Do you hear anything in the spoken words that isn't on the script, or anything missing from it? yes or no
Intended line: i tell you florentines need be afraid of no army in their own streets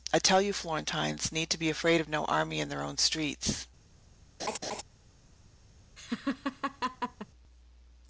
no